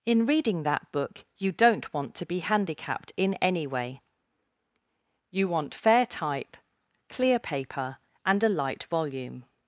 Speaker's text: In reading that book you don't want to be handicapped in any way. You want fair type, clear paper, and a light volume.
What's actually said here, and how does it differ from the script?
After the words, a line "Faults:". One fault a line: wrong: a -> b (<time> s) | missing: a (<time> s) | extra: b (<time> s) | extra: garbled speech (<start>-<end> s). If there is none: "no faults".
In reading that book you don't want to be handicapped in any way. You want fair type, clear paper, and a light volume.
Faults:
no faults